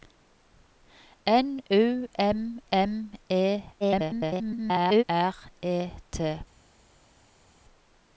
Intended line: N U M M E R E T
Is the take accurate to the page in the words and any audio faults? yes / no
no